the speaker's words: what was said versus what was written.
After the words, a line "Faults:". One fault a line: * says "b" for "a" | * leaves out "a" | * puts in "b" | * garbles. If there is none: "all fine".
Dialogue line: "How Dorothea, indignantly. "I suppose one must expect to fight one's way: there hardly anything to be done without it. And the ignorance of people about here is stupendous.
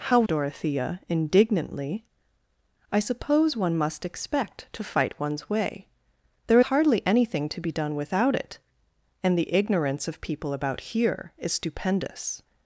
"How Dorothea, indignantly. "I suppose one must expect to fight one's way: there hardly anything to be done without it. And the ignorance of people about here is stupendous.
Faults:
all fine